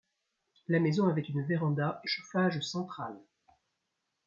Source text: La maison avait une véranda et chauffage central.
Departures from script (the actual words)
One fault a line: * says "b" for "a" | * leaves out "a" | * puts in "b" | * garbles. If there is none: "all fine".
all fine